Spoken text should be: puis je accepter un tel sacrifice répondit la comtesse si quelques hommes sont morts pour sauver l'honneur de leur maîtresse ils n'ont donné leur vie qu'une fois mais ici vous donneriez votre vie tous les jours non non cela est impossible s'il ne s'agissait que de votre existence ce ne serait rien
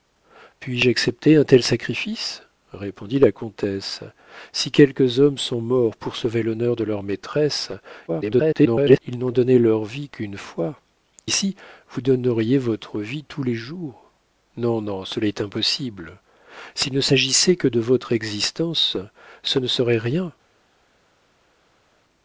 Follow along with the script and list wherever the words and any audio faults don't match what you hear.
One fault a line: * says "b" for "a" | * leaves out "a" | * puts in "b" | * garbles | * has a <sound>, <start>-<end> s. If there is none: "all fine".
* garbles
* leaves out "mais"